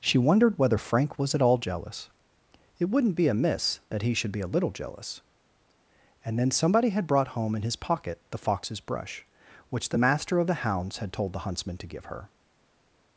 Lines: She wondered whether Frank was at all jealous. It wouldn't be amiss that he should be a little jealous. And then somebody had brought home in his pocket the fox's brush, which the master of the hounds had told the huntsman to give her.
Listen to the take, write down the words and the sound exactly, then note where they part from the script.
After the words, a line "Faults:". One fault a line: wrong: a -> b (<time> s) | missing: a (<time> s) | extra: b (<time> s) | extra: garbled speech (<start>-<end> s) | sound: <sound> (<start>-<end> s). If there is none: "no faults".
She wondered whether Frank was at all jealous. It wouldn't be amiss that he should be a little jealous. And then somebody had brought home in his pocket the fox's brush, which the master of the hounds had told the huntsman to give her.
Faults:
no faults